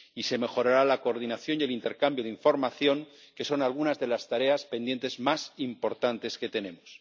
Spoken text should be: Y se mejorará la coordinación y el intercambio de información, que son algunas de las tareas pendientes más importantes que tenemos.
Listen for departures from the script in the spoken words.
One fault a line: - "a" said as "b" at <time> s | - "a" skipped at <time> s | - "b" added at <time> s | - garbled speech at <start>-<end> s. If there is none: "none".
none